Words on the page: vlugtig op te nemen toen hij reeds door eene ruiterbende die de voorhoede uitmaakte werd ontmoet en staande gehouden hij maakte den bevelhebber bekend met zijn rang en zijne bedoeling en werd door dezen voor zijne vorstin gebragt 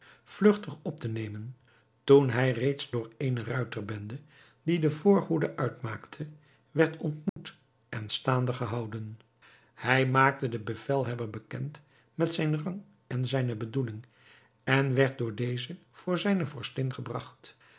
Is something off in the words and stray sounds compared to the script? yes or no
yes